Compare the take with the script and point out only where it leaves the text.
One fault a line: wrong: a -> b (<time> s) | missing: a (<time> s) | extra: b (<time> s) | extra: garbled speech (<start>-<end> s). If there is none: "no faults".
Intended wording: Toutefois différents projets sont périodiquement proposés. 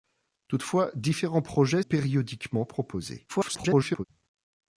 missing: sont (1.8 s)
extra: garbled speech (3.3-4.0 s)